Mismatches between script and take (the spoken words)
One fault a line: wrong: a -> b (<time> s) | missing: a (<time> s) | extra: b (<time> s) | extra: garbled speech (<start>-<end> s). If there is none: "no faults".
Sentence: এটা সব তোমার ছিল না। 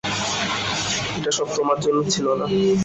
extra: জন্য (1.8 s)